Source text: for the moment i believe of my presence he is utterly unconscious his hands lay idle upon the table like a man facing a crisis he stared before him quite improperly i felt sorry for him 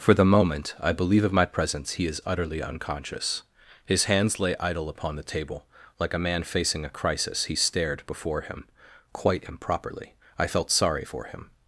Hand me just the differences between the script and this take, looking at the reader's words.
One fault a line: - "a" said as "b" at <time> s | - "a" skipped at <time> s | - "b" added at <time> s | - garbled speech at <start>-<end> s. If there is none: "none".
none